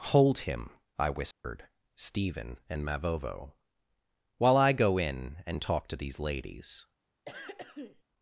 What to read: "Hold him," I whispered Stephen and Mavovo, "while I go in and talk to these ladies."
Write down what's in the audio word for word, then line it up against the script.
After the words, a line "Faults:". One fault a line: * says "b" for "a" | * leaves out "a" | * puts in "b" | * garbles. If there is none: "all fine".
"Hold him," I whispered Stephen and Mavovo, "while I go in and talk to these ladies."
Faults:
all fine